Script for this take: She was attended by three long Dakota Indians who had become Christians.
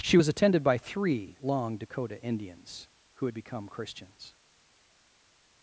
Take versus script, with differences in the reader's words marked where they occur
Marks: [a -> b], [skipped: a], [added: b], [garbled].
She was attended by three long Dakota Indians who had become Christians.